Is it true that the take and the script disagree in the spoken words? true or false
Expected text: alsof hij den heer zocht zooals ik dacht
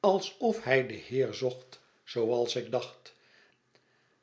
false